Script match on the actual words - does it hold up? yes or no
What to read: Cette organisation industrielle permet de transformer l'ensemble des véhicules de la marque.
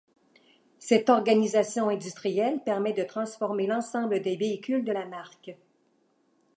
yes